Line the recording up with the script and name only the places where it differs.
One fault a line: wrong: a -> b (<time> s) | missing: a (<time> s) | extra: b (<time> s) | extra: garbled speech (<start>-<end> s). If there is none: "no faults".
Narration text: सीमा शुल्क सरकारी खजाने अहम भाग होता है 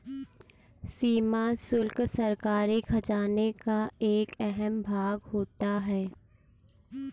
extra: का एक (3.6 s)